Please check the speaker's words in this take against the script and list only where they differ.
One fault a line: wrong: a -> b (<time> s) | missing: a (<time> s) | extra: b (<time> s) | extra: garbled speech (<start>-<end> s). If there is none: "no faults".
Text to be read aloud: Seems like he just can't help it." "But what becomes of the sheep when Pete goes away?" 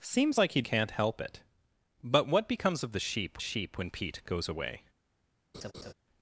missing: just (0.6 s)
extra: sheep (3.4 s)